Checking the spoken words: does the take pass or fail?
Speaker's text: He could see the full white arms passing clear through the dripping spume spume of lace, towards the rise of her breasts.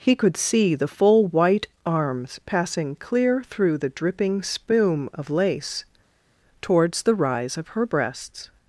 fail